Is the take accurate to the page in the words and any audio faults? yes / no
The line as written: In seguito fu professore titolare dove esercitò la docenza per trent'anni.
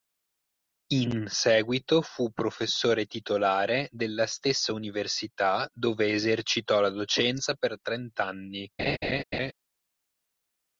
no